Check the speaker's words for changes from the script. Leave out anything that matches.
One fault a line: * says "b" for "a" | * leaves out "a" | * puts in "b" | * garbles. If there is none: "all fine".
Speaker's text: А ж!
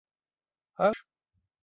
all fine